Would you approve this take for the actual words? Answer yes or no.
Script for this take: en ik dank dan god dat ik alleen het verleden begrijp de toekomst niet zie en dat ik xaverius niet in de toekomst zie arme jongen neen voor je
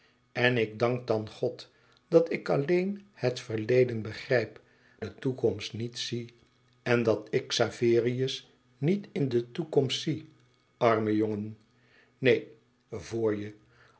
yes